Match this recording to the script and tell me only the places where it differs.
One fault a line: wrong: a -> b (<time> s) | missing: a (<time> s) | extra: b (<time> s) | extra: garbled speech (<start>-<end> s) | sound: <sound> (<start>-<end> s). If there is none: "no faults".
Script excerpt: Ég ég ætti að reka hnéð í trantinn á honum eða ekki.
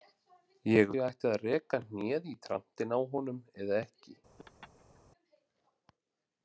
sound: laugh (4.4-5.0 s)